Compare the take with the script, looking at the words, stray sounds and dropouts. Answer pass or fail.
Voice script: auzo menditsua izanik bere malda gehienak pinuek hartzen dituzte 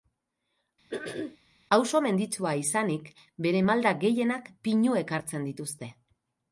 fail